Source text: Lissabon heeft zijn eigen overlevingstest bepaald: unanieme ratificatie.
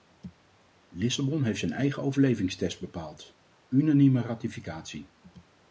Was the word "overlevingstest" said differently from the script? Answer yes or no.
no